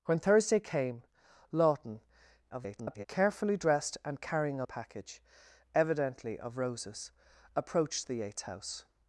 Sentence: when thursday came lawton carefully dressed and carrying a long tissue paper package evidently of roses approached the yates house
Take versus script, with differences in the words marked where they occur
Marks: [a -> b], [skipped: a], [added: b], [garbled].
when thursday came lawton [garbled] carefully dressed and carrying a [skipped: long tissue paper] package evidently of roses approached the yates house